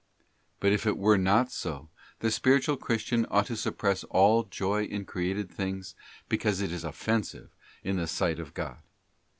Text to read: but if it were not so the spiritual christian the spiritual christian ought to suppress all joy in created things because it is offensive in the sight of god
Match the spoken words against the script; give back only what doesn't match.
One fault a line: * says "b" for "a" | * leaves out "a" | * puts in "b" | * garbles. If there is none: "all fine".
* leaves out "the spiritual christian"